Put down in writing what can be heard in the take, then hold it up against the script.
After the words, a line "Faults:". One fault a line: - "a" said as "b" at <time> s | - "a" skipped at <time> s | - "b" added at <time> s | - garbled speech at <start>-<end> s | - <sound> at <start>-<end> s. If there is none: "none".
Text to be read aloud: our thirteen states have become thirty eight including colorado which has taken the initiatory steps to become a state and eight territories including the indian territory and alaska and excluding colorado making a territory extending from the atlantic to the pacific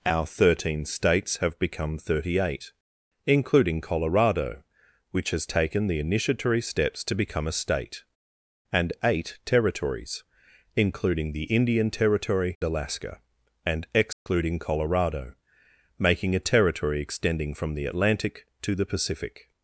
our thirteen states have become thirty eight including colorado which has taken the initiatory steps to become a state and eight territories including the indian territory alaska and excluding colorado making a territory extending from the atlantic to the pacific
Faults:
- "and" skipped at 12.6 s
- dropout at 14.1-14.3 s